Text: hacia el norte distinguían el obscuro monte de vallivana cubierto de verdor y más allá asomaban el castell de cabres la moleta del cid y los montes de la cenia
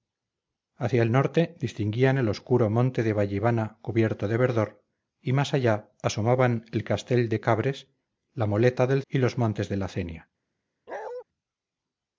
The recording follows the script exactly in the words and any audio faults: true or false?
false